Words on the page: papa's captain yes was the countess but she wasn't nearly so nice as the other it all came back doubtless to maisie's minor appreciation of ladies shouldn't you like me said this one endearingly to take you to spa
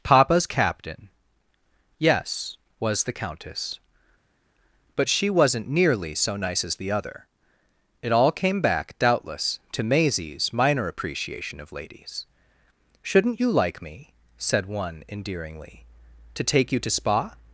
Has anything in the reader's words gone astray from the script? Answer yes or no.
yes